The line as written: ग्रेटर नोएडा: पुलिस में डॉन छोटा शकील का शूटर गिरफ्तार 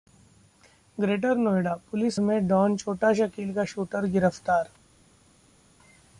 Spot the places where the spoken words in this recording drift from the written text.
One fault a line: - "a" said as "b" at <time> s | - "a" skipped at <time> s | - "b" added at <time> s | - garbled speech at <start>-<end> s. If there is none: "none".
none